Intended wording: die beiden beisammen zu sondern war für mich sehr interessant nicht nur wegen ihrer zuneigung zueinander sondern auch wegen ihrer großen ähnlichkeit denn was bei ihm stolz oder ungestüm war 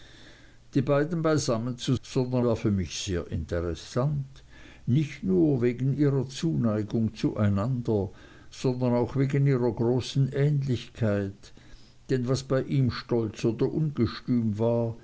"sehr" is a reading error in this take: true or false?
false